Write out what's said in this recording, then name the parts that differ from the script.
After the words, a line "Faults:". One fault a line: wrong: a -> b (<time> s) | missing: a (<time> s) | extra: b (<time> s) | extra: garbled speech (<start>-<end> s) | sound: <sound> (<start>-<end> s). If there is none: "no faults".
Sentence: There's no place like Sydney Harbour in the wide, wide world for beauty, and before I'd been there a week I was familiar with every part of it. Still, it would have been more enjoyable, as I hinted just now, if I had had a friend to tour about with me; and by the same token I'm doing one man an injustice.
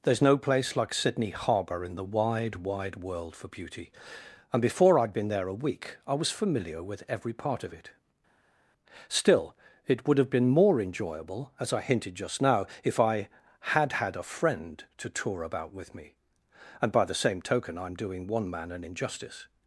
There's no place like Sydney Harbour in the wide, wide world for beauty, and before I'd been there a week I was familiar with every part of it. Still, it would have been more enjoyable, as I hinted just now, if I had had a friend to tour about with me; and by the same token I'm doing one man an injustice.
Faults:
no faults